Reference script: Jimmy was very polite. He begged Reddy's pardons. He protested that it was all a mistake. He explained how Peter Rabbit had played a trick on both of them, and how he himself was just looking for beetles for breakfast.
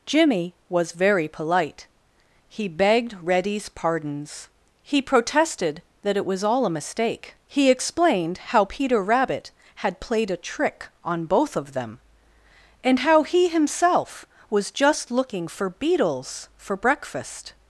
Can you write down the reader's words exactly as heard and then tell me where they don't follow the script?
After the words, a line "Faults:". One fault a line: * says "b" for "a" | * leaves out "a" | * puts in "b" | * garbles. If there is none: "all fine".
Jimmy was very polite. He begged Reddy's pardons. He protested that it was all a mistake. He explained how Peter Rabbit had played a trick on both of them, and how he himself was just looking for beetles for breakfast.
Faults:
all fine